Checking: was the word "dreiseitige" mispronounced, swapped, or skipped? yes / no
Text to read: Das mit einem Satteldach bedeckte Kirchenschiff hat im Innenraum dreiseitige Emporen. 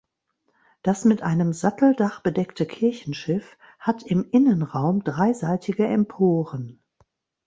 no